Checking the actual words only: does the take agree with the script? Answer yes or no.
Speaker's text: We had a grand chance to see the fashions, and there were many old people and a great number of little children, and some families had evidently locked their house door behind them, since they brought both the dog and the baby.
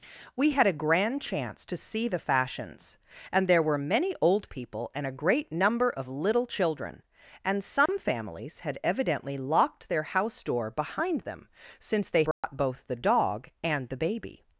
yes